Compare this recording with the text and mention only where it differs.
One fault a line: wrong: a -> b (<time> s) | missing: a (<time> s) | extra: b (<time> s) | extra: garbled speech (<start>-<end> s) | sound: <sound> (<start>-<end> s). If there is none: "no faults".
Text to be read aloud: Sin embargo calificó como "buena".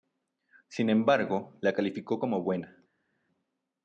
extra: la (1.6 s)